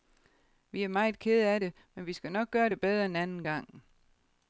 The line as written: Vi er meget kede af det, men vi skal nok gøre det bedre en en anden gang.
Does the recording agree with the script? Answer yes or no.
no